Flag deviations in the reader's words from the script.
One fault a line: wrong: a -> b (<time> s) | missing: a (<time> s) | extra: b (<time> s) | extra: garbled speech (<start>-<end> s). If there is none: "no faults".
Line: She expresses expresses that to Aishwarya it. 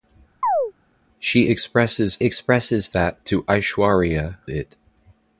no faults